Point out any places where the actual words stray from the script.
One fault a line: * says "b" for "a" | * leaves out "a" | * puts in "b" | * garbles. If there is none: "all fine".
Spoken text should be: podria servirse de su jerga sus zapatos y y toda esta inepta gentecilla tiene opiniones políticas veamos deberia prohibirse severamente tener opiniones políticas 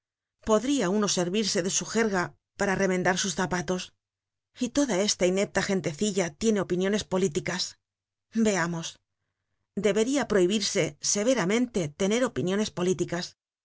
* puts in "uno"
* puts in "para remendar"
* leaves out "y"